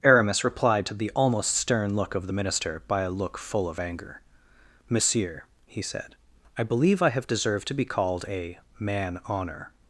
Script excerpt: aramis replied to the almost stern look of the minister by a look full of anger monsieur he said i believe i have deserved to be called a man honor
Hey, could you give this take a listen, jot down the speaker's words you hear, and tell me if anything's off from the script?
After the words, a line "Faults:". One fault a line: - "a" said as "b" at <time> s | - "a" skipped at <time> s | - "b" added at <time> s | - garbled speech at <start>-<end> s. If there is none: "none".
aramis replied to the almost stern look of the minister by a look full of anger monsieur he said i believe i have deserved to be called a man honor
Faults:
none